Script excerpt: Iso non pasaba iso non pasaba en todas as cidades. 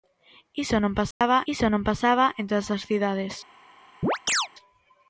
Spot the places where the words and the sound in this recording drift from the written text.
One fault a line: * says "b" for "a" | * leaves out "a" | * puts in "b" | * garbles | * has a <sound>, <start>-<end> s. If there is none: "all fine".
* has a dropout, 1.1-1.2 s
* has a chirp, 4.0-4.5 s